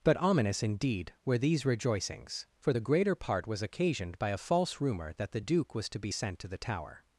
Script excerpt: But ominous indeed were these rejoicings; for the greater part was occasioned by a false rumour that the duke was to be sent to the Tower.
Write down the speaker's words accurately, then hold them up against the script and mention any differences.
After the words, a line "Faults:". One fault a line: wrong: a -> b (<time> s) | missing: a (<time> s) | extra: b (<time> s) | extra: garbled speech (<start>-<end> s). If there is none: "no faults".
But ominous indeed were these rejoicings; for the greater part was occasioned by a false rumour that the duke was to be sent to the Tower.
Faults:
no faults